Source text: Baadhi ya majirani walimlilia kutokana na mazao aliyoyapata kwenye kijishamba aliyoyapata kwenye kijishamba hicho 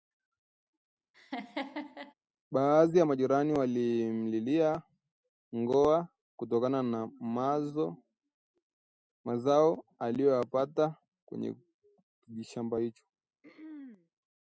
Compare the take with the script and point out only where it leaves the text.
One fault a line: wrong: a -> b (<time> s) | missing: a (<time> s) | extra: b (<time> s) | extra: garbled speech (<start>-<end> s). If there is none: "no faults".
extra: ngoa (5.5 s)
missing: aliyoyapata kwenye kijishamba (12.8 s)